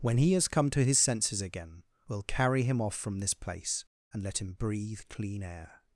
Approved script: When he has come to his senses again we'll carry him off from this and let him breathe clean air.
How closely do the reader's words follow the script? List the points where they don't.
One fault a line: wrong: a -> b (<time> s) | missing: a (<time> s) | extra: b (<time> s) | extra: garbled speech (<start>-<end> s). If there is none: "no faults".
extra: place (3.4 s)